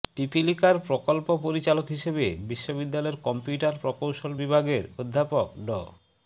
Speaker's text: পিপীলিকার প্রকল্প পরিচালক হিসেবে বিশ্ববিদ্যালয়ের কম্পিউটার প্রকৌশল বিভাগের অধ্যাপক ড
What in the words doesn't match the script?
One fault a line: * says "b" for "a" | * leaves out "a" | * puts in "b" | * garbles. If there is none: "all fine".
all fine